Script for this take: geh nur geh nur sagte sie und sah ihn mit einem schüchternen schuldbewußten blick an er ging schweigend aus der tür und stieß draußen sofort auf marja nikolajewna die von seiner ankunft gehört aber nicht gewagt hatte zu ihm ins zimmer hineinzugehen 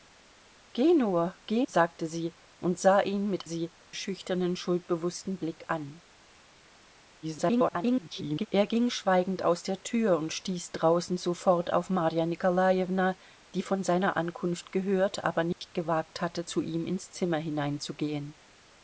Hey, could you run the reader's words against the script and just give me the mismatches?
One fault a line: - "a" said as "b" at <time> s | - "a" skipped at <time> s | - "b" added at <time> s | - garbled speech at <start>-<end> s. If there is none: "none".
- "nur" skipped at 1.7 s
- "einem" said as "sie" at 3.4 s
- garbled speech at 7.2-8.5 s